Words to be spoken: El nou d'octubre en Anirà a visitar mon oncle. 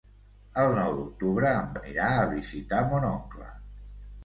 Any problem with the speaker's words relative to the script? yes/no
no